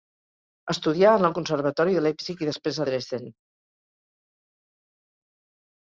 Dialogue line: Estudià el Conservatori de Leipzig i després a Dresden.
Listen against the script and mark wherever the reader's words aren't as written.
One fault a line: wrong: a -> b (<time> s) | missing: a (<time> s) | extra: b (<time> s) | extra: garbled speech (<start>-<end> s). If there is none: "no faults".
extra: en (1.2 s)